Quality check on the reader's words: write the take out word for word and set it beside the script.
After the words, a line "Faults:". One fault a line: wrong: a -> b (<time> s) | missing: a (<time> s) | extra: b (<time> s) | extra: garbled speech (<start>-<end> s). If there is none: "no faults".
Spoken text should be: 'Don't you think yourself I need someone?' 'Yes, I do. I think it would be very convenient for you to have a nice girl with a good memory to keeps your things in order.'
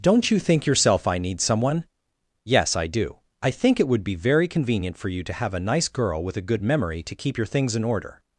'Don't you think yourself I need someone?' 'Yes, I do. I think it would be very convenient for you to have a nice girl with a good memory to keep your things in order.'
Faults:
wrong: keeps -> keep (7.2 s)